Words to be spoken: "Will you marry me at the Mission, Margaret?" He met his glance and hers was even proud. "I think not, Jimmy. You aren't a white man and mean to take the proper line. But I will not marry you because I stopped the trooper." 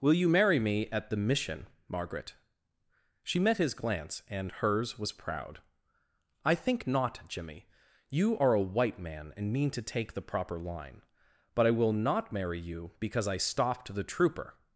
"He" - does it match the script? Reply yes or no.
no